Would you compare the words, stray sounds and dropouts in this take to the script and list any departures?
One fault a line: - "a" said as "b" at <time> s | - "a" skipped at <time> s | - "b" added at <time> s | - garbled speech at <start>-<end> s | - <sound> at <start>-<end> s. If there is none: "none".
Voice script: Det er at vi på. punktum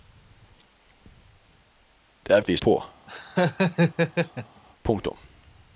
- laugh at 3.1-4.6 s